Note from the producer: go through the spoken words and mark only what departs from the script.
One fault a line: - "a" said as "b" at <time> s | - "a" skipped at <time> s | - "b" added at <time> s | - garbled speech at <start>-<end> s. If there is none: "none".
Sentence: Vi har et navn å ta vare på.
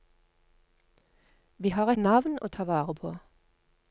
- "et" skipped at 1.9 s